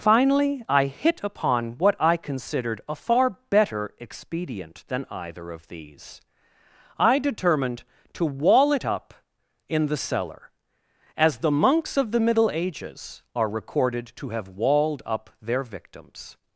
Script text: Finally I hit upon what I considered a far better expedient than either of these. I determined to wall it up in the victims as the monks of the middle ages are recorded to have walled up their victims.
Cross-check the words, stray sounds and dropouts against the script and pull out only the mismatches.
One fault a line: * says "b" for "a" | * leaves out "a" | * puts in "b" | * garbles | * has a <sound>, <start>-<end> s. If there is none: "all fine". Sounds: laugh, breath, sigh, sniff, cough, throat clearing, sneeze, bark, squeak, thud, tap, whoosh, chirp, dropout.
* says "cellar" for "victims"